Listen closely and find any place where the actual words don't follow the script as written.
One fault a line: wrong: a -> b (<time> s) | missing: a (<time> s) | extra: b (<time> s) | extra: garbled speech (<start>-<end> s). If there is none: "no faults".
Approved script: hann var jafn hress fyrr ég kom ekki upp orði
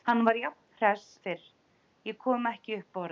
no faults